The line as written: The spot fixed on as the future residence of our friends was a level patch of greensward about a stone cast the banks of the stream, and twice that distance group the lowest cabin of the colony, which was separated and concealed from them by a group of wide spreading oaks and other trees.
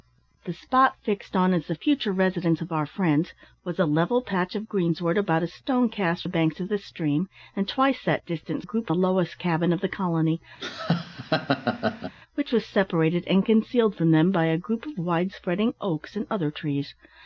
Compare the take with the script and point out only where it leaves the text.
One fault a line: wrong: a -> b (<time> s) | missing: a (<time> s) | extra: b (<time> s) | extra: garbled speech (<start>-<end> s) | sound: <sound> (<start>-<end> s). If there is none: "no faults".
sound: laugh (10.6-12.1 s)